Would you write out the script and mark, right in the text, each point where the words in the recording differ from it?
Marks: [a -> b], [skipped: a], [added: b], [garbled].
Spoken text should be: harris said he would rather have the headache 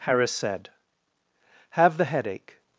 harris said [skipped: he would rather] have the headache